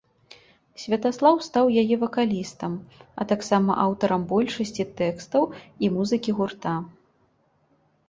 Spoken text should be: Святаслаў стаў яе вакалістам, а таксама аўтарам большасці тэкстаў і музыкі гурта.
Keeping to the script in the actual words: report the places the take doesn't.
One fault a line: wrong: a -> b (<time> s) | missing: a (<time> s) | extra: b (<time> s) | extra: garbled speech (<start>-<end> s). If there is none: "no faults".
no faults